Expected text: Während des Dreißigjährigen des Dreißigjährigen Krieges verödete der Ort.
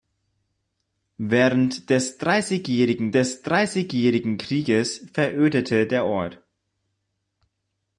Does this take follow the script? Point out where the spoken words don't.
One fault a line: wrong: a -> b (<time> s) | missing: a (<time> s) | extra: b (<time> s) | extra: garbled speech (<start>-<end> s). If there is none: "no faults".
no faults